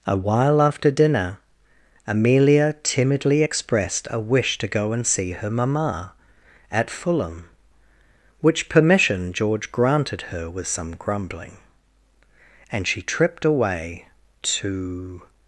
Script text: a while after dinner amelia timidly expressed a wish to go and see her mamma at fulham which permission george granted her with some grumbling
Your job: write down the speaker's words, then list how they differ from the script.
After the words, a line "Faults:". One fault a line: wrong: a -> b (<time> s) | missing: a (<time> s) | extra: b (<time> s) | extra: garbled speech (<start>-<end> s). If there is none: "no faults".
a while after dinner amelia timidly expressed a wish to go and see her mamma at fulham which permission george granted her with some grumbling and she tripped away to
Faults:
extra: and she tripped away to (12.7 s)